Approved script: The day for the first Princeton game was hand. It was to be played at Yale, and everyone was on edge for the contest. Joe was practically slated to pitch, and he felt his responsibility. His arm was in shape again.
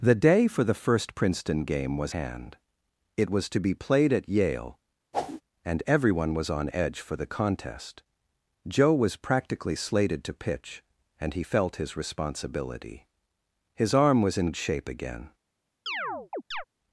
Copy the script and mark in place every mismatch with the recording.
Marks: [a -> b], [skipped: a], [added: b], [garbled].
The day for the first Princeton game was hand. It was to be played at Yale, and everyone was on edge for the contest. Joe was practically slated to pitch, and he felt his responsibility. His arm was in shape again.